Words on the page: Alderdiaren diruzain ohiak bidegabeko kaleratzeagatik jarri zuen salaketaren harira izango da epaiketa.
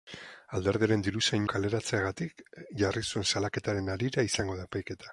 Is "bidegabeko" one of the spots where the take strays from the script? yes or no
yes